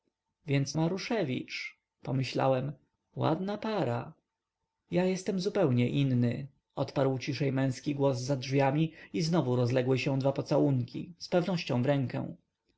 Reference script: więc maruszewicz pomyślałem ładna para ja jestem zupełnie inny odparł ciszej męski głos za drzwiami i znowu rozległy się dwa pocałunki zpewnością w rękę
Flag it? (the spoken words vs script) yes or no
no